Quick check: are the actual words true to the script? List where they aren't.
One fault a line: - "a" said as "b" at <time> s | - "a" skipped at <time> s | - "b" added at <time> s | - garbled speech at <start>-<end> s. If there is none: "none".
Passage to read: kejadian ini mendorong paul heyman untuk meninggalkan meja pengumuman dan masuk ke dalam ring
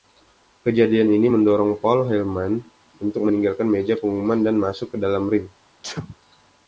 none